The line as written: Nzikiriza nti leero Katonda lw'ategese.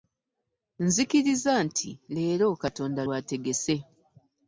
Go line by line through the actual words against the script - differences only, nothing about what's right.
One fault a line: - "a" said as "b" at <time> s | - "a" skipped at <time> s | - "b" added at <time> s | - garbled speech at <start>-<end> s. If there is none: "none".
none